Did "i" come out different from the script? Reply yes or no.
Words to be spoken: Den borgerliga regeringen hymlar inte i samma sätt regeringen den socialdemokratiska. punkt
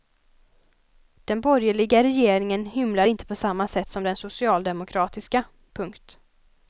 yes